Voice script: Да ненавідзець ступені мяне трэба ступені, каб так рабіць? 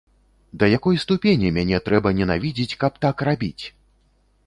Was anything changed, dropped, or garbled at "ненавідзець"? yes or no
yes